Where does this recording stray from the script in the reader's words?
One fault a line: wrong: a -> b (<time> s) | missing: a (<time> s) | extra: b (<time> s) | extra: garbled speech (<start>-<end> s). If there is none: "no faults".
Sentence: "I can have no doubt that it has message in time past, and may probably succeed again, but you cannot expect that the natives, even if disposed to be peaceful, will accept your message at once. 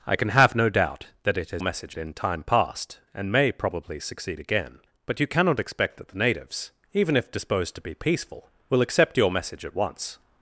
no faults